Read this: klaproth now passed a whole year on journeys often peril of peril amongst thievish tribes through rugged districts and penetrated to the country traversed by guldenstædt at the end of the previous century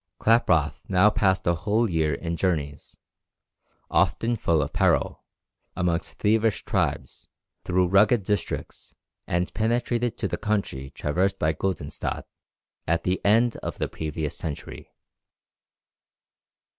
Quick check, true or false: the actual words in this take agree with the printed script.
false